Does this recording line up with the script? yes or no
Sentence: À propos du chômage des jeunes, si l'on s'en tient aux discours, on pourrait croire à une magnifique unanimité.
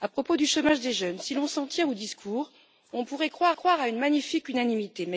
no